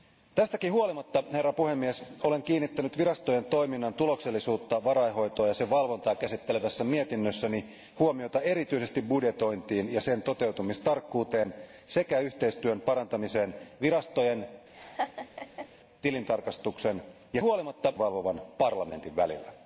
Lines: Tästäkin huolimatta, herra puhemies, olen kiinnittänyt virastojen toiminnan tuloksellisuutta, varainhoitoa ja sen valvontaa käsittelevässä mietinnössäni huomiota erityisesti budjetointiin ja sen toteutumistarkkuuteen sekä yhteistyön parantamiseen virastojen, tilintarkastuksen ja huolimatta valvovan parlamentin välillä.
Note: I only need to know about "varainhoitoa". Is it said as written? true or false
true